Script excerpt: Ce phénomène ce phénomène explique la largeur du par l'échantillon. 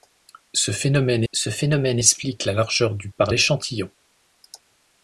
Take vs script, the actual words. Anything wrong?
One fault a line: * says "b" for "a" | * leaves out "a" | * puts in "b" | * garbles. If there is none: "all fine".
all fine